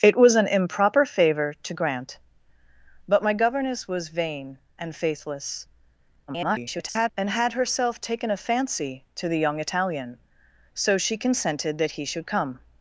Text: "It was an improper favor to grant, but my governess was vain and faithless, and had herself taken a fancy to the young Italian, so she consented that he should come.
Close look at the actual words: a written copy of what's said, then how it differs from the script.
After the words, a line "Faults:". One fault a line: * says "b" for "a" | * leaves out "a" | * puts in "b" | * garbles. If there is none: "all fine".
"It was an improper favor to grant, but my governess was vain and faithless, [garbled] and had herself taken a fancy to the young Italian, so she consented that he should come.
Faults:
* garbles